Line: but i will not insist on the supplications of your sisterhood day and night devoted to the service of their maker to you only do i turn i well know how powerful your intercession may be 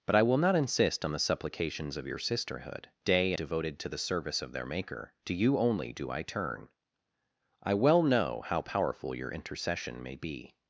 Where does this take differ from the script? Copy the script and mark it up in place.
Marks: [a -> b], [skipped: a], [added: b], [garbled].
but i will not insist on the supplications of your sisterhood day [skipped: and night] devoted to the service of their maker to you only do i turn i well know how powerful your intercession may be